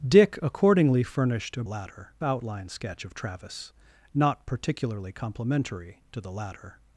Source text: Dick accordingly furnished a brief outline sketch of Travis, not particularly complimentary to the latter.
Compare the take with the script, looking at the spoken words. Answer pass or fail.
fail